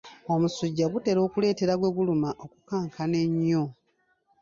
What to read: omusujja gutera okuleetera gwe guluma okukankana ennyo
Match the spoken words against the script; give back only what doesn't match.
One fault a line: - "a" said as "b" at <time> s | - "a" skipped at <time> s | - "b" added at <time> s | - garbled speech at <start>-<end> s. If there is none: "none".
none